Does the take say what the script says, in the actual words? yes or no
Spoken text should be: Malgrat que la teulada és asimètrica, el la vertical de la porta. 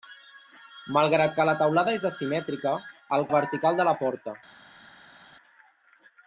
yes